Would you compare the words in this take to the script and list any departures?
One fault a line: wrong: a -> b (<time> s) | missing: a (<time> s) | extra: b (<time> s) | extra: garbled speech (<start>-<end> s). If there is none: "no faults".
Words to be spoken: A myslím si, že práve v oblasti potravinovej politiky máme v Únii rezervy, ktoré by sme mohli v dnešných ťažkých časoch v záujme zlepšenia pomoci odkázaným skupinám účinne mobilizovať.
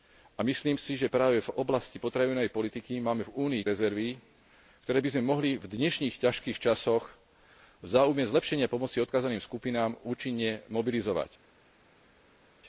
no faults